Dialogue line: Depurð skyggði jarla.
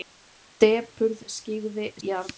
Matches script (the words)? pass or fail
pass